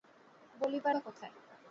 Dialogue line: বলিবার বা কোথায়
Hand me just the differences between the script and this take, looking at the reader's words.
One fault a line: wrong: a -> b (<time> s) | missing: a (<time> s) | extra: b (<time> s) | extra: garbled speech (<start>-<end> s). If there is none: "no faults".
no faults